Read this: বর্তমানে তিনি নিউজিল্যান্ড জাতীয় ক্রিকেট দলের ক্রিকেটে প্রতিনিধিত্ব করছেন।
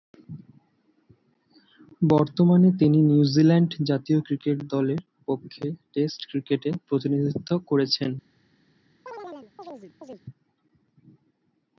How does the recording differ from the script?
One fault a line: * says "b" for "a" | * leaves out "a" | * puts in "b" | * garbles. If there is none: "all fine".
* puts in "পক্ষে টেস্ট"